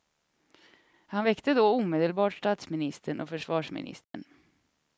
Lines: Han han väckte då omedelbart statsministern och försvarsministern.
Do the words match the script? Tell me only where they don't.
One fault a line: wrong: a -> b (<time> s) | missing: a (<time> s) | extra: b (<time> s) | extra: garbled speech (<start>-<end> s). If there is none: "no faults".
missing: han (1.2 s)